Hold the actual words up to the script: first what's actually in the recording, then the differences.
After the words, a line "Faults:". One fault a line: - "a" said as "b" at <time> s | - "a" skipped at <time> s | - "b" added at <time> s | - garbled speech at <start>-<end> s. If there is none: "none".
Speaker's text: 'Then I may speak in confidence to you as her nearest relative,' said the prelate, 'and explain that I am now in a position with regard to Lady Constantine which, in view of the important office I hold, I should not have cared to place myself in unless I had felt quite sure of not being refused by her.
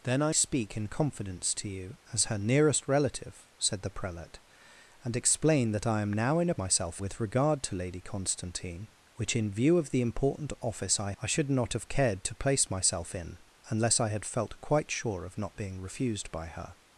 'Then I speak in confidence to you as her nearest relative,' said the prelate, 'and explain that I am now in a myself with regard to Lady Constantine which, in view of the important office I I should not have cared to place myself in unless I had felt quite sure of not being refused by her.
Faults:
- "may" skipped at 0.3 s
- "position" said as "myself" at 6.6 s
- "hold" skipped at 11.1 s